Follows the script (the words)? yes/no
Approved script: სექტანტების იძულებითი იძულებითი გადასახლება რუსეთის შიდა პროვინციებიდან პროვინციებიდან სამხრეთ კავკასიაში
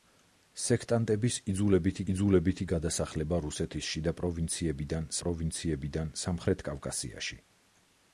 yes